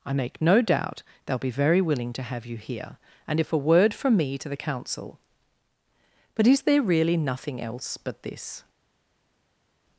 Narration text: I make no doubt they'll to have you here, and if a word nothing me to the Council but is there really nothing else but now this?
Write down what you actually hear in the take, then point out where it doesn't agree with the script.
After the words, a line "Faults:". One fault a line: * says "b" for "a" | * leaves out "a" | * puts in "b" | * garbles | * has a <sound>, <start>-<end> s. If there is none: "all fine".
I make no doubt they'll be very willing to have you here, and if a word from me to the Council but is there really nothing else but this?
Faults:
* puts in "be very willing"
* says "from" for "nothing"
* leaves out "now"